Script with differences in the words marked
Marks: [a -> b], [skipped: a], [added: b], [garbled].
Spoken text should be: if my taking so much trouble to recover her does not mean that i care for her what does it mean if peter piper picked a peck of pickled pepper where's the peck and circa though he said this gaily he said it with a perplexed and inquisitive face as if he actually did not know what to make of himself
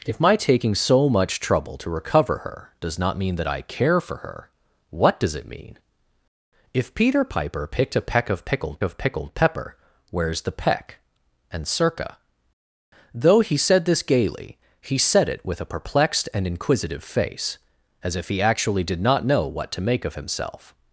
if my taking so much trouble to recover her does not mean that i care for her what does it mean if peter piper picked a peck of pickled [added: of pickled] pepper where's the peck and circa though he said this gaily he said it with a perplexed and inquisitive face as if he actually did not know what to make of himself